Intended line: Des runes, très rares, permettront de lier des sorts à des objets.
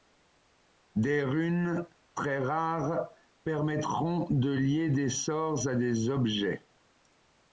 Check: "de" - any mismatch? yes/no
no